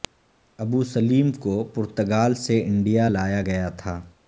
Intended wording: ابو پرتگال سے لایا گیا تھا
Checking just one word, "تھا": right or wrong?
right